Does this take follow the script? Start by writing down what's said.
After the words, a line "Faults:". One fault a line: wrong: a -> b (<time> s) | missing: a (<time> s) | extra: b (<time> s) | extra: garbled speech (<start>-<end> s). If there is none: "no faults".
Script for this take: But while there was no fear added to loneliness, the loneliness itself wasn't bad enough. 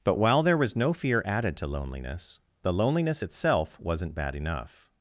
But while there was no fear added to loneliness, the loneliness itself wasn't bad enough.
Faults:
no faults